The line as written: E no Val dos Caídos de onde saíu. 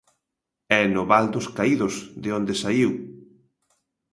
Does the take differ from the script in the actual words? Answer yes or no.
no